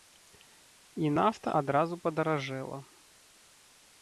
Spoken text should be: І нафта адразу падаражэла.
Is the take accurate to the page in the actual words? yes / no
yes